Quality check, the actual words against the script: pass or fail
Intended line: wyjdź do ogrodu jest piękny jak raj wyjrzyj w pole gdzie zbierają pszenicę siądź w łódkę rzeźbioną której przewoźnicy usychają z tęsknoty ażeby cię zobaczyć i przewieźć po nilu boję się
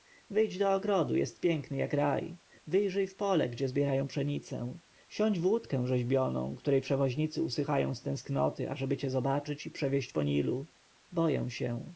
pass